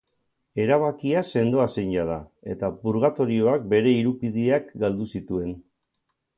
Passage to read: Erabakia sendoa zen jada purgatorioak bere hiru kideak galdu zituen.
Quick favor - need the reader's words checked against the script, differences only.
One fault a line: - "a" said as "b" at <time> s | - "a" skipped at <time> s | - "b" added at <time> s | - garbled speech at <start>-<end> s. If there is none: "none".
- "eta" added at 2.5 s